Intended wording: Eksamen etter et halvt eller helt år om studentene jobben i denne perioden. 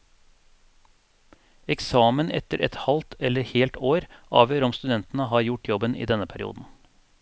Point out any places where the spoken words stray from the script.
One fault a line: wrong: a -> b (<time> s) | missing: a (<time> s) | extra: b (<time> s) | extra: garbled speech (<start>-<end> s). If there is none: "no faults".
extra: avgjør (4.4 s)
extra: har gjort (5.3 s)